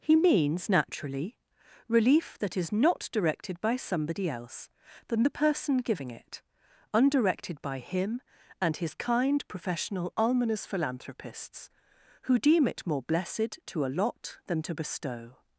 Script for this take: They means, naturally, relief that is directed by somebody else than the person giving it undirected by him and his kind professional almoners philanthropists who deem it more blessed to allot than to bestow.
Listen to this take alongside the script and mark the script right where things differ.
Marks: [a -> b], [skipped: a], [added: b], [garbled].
[They -> He] means, naturally, relief that is [added: not] directed by somebody else than the person giving it undirected by him and his kind professional almoners philanthropists who deem it more blessed to allot than to bestow.